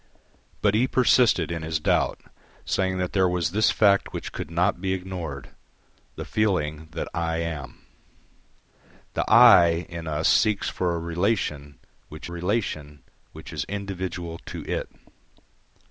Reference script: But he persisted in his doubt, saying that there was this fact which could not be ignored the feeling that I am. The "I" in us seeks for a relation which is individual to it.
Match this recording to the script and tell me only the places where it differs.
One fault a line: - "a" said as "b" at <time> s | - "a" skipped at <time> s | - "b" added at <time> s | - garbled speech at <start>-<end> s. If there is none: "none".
- "relation which" added at 12.3 s